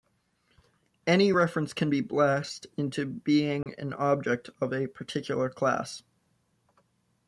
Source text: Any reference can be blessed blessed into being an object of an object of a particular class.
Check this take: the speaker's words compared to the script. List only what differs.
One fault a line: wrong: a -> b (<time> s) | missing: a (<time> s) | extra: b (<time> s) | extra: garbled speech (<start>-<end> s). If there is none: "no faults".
missing: blessed (2.7 s)
missing: an object of (4.7 s)